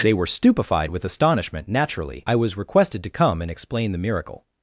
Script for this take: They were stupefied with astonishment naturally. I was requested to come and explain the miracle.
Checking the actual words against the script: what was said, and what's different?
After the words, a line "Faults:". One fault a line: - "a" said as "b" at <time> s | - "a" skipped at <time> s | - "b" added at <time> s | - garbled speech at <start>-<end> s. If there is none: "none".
They were stupefied with astonishment naturally. I was requested to come and explain the miracle.
Faults:
none